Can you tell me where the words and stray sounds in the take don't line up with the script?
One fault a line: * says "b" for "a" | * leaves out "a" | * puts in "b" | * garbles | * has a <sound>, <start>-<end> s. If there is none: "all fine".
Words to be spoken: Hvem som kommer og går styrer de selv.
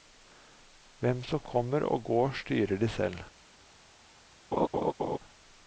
* has a laugh, 4.5-5.2 s